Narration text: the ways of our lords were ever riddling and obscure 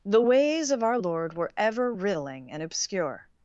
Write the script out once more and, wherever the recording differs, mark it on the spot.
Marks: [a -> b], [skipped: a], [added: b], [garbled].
the ways of our [lords -> lord] were ever riddling and obscure